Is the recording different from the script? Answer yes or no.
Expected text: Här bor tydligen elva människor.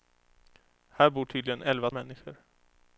no